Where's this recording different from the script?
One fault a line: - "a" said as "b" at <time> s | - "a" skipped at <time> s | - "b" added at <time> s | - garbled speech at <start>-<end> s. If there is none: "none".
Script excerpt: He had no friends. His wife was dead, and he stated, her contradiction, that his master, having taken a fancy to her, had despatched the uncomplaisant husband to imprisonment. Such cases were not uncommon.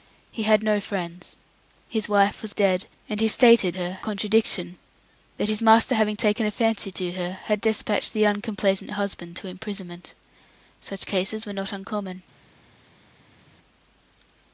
none